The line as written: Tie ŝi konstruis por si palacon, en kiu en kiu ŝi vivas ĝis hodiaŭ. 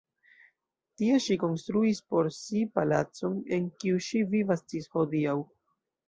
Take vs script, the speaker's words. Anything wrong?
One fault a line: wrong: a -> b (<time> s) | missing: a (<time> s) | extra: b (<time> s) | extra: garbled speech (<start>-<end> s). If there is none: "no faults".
missing: en kiu (4.0 s)